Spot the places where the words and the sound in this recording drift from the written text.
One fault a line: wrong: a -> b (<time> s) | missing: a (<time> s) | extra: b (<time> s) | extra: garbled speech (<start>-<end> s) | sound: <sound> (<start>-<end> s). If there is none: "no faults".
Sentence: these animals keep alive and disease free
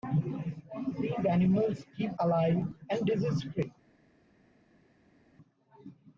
no faults